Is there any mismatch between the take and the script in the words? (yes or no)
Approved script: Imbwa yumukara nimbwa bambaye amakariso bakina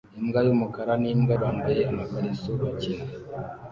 no